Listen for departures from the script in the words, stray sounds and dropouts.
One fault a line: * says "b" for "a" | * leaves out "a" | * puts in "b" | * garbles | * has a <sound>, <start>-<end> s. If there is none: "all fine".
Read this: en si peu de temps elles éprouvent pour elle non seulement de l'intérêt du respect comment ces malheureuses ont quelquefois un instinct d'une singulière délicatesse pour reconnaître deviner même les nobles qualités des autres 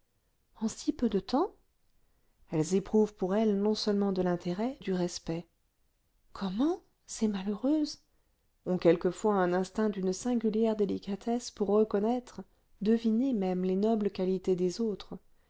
all fine